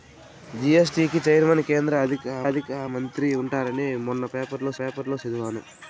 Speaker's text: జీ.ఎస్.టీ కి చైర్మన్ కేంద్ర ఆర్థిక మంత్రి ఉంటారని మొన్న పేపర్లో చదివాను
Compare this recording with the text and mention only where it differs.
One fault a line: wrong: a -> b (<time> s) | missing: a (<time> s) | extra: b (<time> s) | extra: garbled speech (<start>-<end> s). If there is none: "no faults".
extra: ఆర్థిక (2.5 s)
extra: పేపర్లో (4.8 s)